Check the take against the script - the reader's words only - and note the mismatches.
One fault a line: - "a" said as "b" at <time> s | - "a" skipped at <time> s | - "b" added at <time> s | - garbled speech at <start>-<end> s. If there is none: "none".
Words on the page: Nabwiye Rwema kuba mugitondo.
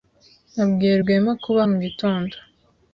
none